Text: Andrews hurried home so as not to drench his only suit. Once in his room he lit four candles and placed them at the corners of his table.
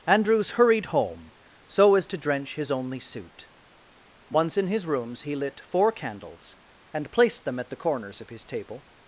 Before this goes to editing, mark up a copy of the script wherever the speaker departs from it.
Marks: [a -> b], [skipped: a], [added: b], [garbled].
Andrews hurried home so as [skipped: not] to drench his only suit. Once in his [room -> rooms] he lit four candles and placed them at the corners of his table.